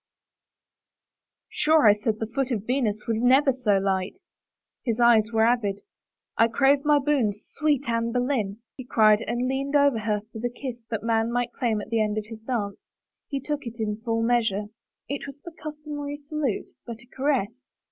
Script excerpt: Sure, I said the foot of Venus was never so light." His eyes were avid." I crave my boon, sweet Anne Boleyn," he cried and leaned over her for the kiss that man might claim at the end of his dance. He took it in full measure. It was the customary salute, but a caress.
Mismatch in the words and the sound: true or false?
false